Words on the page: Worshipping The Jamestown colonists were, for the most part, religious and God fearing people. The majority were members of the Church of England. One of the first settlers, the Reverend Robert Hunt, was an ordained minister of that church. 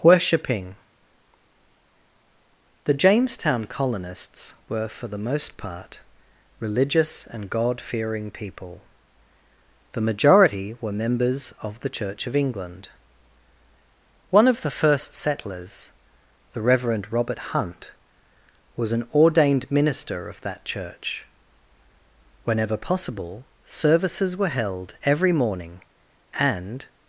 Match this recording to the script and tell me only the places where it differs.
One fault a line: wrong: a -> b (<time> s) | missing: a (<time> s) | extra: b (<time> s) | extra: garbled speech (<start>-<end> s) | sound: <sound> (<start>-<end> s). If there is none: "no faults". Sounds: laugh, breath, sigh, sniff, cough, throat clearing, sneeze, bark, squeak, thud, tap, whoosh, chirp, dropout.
extra: Whenever possible services were held every morning and (22.5 s)